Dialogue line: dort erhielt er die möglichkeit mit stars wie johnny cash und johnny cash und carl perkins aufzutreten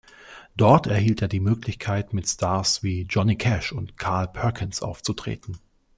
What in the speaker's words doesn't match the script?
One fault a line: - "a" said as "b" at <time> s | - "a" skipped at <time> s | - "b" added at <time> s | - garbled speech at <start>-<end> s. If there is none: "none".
- "johnny cash und" skipped at 4.0 s